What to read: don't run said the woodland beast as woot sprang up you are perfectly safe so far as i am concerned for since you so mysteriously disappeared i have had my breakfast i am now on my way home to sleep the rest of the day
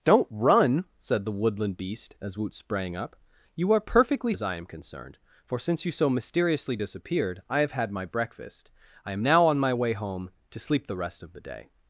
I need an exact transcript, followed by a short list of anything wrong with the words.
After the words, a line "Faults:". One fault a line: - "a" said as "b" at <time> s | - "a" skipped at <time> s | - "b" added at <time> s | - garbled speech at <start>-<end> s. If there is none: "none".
don't run said the woodland beast as woot sprang up you are perfectly as i am concerned for since you so mysteriously disappeared i have had my breakfast i am now on my way home to sleep the rest of the day
Faults:
- "safe so far" skipped at 4.3 s